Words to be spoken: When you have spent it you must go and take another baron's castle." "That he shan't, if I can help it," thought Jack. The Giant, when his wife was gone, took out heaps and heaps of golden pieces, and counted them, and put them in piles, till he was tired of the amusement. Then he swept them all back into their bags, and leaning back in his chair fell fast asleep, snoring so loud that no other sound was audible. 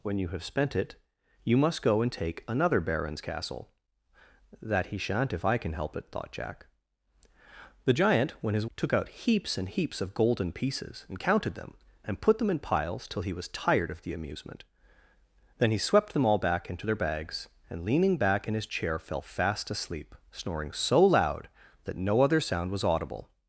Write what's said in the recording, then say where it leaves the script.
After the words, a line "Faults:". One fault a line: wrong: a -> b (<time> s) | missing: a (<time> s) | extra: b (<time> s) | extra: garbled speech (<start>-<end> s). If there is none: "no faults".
When you have spent it you must go and take another baron's castle." "That he shan't, if I can help it," thought Jack. The Giant, when his took out heaps and heaps of golden pieces, and counted them, and put them in piles, till he was tired of the amusement. Then he swept them all back into their bags, and leaning back in his chair fell fast asleep, snoring so loud that no other sound was audible.
Faults:
missing: wife was gone (8.7 s)